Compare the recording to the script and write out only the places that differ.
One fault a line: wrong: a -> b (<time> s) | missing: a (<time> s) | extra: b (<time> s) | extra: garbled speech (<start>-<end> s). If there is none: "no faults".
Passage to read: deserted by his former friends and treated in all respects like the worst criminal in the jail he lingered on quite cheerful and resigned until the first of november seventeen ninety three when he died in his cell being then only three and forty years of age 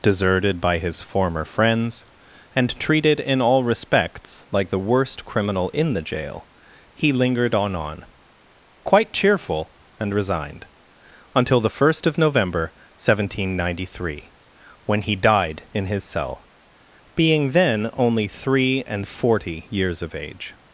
extra: on (7.8 s)